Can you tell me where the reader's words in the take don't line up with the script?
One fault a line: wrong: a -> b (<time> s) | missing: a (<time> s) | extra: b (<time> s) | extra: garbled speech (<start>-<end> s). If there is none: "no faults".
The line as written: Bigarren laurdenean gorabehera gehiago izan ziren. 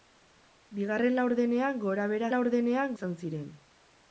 wrong: gehiago -> laurdenean (2.3 s)